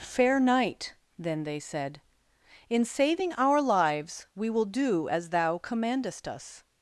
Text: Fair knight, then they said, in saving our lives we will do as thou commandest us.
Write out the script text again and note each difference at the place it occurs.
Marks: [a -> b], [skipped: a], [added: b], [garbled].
Fair knight, then they said, in saving our lives we will do as thou commandest us.